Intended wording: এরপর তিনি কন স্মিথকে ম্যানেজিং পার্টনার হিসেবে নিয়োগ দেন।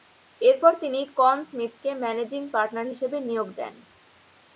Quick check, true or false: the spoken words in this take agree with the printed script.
true